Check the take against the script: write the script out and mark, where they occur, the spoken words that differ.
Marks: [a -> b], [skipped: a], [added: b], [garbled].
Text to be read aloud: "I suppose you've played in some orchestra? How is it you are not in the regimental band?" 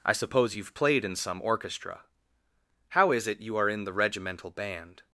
"I suppose you've played in some orchestra? How is it you are [skipped: not] in the regimental band?"